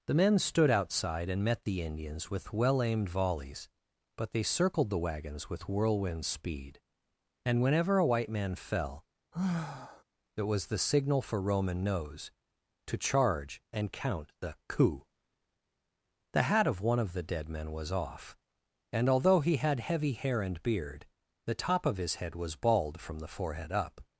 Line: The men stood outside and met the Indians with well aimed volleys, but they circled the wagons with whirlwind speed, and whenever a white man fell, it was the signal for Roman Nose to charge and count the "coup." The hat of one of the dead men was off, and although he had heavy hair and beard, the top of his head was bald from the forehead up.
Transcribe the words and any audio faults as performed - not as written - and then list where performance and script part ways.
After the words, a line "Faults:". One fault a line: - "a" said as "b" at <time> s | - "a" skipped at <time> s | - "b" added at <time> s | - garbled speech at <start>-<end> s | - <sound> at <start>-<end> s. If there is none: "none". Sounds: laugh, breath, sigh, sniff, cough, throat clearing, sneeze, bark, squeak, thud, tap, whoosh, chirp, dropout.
The men stood outside and met the Indians with well aimed volleys, but they circled the wagons with whirlwind speed, and whenever a white man fell, it was the signal for Roman Nose to charge and count the "coup." The hat of one of the dead men was off, and although he had heavy hair and beard, the top of his head was bald from the forehead up.
Faults:
- sigh at 9.3-10.0 s